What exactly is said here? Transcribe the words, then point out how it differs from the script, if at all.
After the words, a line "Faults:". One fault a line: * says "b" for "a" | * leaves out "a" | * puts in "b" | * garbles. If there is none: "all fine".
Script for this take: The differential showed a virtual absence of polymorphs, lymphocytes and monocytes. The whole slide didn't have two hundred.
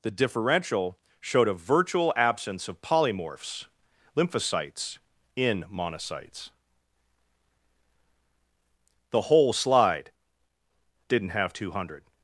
The differential showed a virtual absence of polymorphs, lymphocytes in monocytes. The whole slide didn't have two hundred.
Faults:
* says "in" for "and"